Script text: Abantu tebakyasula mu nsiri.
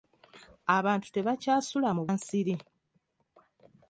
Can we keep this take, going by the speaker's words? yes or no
yes